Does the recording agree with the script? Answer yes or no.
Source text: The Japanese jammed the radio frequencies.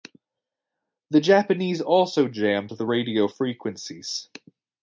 no